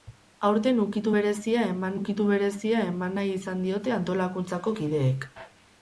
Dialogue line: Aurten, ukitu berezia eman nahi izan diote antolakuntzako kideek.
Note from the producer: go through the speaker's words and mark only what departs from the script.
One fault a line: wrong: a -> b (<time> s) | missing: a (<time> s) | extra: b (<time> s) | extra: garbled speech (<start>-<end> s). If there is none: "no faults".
extra: ukitu berezia eman (2.0 s)